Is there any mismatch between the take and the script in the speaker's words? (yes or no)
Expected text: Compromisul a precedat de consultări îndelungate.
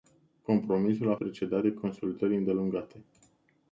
no